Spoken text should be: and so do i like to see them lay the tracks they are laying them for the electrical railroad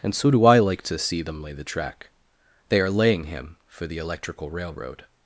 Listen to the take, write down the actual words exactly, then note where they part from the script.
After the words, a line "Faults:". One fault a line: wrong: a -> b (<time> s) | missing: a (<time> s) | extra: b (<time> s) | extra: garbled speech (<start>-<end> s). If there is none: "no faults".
and so do i like to see them lay the track they are laying him for the electrical railroad
Faults:
wrong: tracks -> track (1.6 s)
wrong: them -> him (3.2 s)